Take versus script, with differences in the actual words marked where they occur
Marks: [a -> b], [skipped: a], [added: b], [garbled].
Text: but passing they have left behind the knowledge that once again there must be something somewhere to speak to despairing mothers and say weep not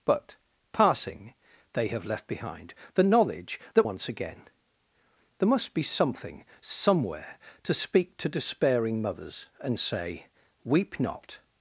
but passing they have left behind the knowledge that once again there must be something somewhere to speak to despairing mothers and say weep not